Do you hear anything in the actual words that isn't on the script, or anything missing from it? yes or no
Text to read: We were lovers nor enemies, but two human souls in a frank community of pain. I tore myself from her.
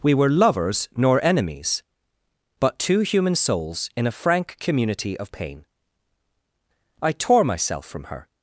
no